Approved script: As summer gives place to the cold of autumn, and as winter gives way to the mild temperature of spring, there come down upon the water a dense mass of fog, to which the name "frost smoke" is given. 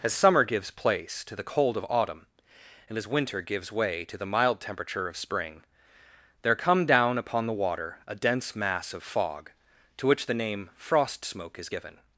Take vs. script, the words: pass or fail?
pass